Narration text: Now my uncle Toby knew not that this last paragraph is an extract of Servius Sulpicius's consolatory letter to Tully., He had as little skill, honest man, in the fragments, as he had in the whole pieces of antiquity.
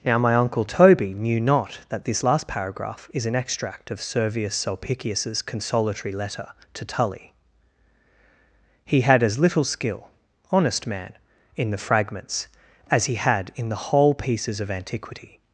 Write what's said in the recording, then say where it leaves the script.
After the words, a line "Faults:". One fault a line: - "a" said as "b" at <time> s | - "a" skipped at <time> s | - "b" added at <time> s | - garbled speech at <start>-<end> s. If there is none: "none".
Now my uncle Toby knew not that this last paragraph is an extract of Servius Sulpicius's consolatory letter to Tully., He had as little skill, honest man, in the fragments, as he had in the whole pieces of antiquity.
Faults:
none